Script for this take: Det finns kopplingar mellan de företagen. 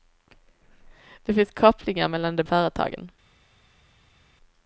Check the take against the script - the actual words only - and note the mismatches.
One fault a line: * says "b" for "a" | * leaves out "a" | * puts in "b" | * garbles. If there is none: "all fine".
all fine